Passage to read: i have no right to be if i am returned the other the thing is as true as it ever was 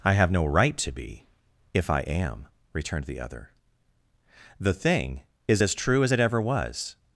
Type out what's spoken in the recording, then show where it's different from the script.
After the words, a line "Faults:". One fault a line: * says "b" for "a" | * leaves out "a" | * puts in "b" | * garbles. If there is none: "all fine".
i have no right to be if i am returned the other the thing is as true as it ever was
Faults:
all fine